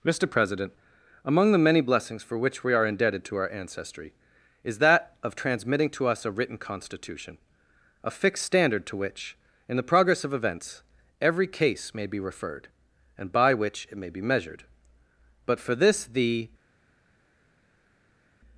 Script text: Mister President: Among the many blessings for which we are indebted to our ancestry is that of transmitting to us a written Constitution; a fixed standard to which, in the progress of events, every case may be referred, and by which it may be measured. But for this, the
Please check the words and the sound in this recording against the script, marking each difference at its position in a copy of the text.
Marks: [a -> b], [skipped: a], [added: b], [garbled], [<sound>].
Mister President: Among the many blessings for which we are indebted to our ancestry is that of transmitting to us a written Constitution; a fixed standard to which, in the progress of events, every case may be referred, and by which it may be measured. But for this, the